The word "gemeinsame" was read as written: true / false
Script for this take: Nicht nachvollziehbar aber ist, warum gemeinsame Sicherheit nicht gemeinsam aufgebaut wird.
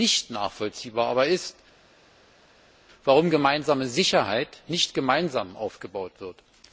true